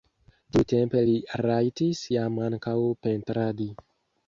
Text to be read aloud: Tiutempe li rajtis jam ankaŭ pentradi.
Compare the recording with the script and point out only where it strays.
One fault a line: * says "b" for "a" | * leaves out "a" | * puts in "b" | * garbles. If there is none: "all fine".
all fine